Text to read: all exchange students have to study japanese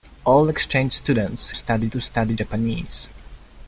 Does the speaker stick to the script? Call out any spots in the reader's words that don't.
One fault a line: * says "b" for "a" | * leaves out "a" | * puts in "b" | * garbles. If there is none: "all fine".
* says "study" for "have"